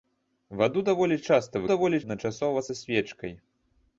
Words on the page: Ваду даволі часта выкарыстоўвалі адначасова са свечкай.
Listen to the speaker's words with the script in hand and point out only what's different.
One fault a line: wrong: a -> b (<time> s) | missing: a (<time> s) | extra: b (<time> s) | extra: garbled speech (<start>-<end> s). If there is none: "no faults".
wrong: выкарыстоўвалі -> даволі (1.7 s)